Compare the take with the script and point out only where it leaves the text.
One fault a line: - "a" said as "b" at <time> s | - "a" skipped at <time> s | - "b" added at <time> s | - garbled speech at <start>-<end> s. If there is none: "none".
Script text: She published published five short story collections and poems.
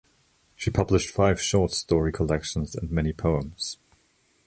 - "published" skipped at 1.1 s
- "many" added at 2.9 s